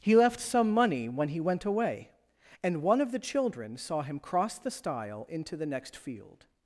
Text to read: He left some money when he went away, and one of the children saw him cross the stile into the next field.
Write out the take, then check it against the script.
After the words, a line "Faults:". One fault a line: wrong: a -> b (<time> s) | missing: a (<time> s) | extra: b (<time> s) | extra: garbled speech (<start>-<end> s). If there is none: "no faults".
He left some money when he went away, and one of the children saw him cross the stile into the next field.
Faults:
no faults